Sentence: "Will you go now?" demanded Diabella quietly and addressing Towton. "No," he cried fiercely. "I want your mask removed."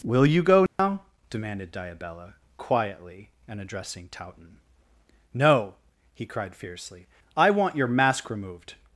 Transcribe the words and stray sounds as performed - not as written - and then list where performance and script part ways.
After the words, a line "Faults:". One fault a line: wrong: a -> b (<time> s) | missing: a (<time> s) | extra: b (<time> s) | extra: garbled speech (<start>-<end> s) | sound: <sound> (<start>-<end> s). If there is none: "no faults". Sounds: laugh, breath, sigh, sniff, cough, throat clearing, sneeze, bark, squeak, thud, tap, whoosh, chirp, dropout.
"Will you go now?" demanded Diabella quietly and addressing Towton. "No," he cried fiercely. "I want your mask removed."
Faults:
sound: dropout (0.7-0.8 s)